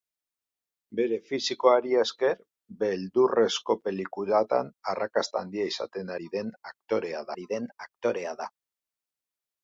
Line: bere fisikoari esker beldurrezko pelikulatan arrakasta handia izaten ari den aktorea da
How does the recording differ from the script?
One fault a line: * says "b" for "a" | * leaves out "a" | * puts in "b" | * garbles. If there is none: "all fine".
* puts in "ari den aktorea"